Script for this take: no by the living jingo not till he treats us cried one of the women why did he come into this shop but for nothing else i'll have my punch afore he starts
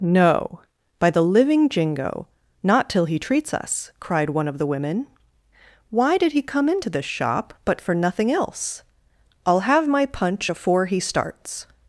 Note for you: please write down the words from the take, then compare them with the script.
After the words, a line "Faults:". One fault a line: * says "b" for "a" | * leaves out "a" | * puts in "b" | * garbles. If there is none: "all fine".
no by the living jingo not till he treats us cried one of the women why did he come into this shop but for nothing else i'll have my punch afore he starts
Faults:
all fine